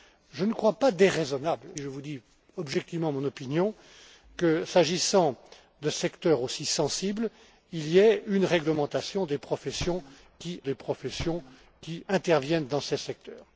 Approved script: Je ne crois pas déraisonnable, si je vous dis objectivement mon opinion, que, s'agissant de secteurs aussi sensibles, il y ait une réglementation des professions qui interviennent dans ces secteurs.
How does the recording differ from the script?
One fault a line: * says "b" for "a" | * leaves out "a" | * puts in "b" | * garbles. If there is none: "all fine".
* leaves out "si"
* puts in "des professions qui"